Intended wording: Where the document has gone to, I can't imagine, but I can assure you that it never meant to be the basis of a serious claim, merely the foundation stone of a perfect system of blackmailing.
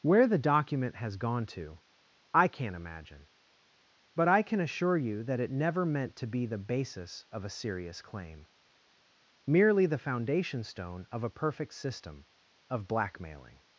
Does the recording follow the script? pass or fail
pass